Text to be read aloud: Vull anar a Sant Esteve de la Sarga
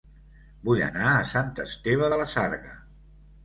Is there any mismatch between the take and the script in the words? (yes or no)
no